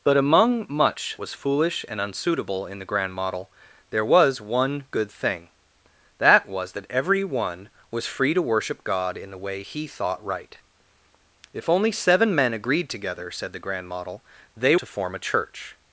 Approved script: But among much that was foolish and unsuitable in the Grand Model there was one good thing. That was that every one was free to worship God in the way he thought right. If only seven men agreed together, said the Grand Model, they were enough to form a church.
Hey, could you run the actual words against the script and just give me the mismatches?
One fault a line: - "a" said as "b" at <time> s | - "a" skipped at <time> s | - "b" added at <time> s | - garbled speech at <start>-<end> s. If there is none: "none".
- "that" skipped at 1.2 s
- "were enough" skipped at 14.7 s